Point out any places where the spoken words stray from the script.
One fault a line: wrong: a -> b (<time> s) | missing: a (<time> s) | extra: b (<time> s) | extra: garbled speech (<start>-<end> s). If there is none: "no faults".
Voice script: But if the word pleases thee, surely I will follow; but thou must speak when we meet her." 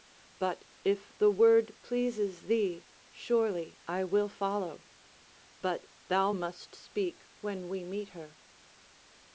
no faults